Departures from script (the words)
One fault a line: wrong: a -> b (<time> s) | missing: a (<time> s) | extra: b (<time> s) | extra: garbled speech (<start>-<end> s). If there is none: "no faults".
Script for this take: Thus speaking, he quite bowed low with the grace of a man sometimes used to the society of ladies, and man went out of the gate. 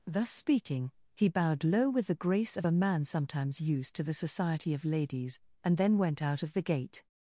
missing: quite (1.3 s)
wrong: man -> then (5.8 s)